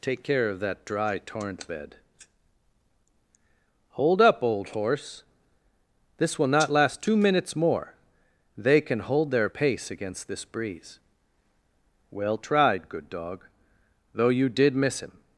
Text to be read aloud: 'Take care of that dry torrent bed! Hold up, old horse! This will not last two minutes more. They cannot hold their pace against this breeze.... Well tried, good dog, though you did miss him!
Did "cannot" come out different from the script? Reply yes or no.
yes